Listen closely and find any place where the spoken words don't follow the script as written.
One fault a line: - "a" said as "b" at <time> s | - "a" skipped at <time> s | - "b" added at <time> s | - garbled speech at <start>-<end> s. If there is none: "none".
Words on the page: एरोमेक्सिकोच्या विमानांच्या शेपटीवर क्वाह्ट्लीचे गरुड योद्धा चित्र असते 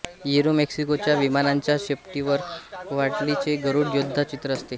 none